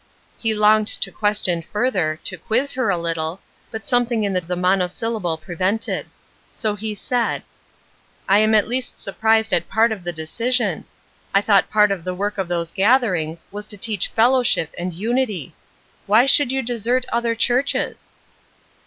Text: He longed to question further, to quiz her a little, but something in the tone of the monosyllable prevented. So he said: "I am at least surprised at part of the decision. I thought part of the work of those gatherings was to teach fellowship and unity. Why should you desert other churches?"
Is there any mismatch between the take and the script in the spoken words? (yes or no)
yes